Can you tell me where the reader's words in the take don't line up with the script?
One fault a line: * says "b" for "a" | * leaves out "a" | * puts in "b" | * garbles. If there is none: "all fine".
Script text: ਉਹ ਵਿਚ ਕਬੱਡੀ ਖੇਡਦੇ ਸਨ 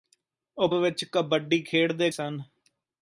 all fine